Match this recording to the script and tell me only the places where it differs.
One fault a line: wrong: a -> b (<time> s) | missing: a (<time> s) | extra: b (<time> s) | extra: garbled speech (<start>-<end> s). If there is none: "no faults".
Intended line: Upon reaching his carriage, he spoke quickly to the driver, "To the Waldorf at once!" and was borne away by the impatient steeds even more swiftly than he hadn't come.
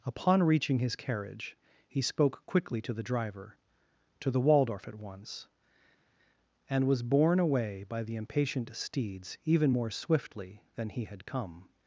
wrong: hadn't -> had (11.0 s)